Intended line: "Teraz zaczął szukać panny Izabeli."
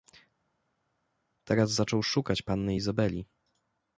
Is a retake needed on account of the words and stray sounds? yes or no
no